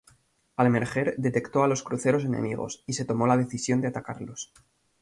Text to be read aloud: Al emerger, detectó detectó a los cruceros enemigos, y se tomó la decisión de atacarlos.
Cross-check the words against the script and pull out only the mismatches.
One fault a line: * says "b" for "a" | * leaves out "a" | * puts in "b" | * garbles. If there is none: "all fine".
* leaves out "detectó"